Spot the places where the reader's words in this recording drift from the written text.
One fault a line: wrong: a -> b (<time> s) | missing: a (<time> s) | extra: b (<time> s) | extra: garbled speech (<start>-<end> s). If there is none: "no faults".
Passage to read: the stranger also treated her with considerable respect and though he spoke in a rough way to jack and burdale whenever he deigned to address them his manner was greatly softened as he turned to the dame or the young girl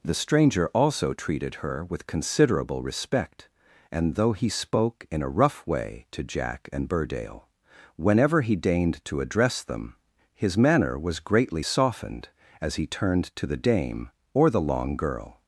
wrong: young -> long (14.6 s)